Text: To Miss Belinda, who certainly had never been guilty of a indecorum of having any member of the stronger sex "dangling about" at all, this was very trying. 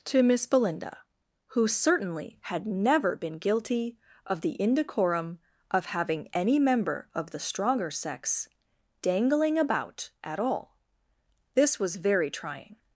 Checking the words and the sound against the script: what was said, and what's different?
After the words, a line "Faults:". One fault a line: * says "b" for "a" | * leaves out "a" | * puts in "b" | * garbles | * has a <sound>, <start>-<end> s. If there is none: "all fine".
To Miss Belinda, who certainly had never been guilty of the indecorum of having any member of the stronger sex "dangling about" at all, this was very trying.
Faults:
* says "the" for "a"